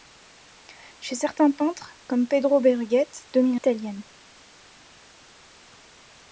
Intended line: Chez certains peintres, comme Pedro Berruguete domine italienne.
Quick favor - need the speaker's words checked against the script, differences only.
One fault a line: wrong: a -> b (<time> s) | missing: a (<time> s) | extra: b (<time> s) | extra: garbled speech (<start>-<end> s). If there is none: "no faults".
no faults